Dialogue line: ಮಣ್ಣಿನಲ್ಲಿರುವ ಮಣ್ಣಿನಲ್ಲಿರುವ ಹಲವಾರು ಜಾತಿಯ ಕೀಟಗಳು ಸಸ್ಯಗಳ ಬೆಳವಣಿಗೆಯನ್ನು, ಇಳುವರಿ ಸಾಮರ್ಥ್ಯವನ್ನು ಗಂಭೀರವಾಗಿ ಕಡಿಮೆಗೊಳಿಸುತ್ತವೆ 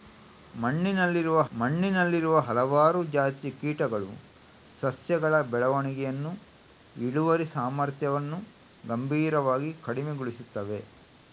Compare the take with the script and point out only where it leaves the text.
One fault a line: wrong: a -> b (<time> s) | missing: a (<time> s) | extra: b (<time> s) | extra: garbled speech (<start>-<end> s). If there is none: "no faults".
no faults